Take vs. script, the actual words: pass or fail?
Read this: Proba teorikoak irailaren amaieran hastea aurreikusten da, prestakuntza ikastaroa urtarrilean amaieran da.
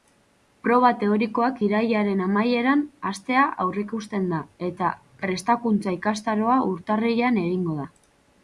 fail